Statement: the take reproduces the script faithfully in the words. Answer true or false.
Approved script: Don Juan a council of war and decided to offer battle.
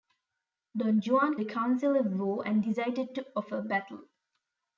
true